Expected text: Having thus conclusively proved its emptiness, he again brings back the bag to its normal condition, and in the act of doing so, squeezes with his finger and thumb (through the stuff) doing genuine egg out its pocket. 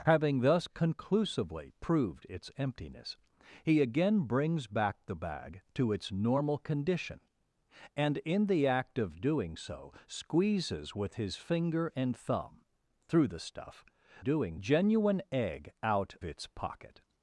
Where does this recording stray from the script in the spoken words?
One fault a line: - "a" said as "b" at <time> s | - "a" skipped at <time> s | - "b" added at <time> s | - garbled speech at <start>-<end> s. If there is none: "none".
none